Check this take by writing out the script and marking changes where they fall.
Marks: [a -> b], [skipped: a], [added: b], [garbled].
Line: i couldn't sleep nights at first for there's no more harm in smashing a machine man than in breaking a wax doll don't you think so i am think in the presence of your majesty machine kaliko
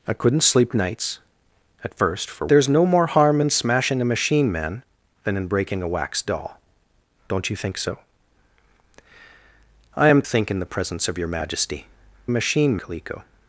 i couldn't sleep nights at first for there's no more harm in smashing a machine man than in breaking a wax doll don't you think so i am think in the presence of your majesty machine kaliko